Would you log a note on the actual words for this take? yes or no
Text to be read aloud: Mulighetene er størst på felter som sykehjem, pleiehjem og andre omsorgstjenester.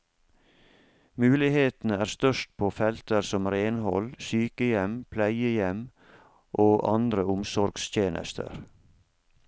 yes